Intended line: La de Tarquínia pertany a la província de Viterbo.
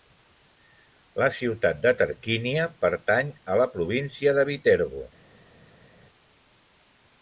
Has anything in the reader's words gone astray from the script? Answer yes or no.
yes